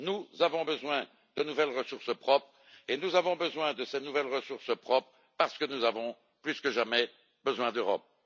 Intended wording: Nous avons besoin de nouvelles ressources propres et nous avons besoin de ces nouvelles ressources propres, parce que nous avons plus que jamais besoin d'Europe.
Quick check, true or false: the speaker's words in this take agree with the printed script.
true